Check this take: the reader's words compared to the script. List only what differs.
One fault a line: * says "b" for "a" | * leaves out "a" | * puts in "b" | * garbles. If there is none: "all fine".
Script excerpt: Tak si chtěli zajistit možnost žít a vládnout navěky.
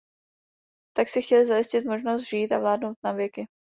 all fine